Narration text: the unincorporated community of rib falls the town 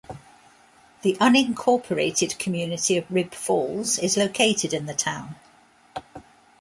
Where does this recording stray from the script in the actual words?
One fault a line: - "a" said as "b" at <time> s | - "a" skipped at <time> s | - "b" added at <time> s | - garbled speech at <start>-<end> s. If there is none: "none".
- "is located in" added at 4.0 s